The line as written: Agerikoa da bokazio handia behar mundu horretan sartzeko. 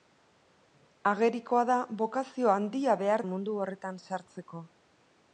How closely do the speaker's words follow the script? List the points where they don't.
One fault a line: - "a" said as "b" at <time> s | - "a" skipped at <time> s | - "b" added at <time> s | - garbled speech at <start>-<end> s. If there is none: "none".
none